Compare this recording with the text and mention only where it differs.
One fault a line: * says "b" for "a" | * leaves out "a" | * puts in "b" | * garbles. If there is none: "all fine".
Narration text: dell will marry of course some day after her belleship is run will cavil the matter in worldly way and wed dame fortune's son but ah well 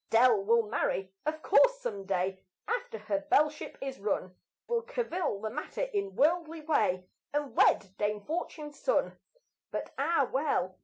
all fine